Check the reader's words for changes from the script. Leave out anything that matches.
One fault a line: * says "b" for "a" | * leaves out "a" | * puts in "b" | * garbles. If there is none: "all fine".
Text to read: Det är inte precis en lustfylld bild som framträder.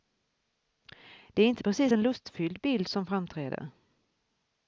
all fine